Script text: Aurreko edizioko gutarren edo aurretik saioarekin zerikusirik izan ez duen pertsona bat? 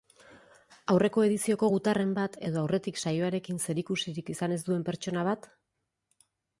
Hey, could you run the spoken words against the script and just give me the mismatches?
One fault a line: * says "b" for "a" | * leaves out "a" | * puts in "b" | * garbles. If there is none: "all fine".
* puts in "bat"